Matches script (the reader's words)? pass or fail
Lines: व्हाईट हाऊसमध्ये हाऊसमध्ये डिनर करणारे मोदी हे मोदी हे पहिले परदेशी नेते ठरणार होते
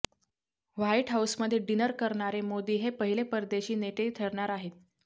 fail